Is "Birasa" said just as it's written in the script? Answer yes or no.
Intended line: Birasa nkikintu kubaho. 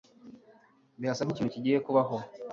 yes